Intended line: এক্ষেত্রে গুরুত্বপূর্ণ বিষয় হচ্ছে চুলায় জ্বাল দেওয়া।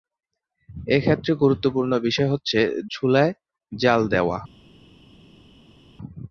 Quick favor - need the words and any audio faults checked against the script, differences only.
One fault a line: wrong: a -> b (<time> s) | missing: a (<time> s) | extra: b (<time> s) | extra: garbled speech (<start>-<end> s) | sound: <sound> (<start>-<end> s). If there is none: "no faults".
no faults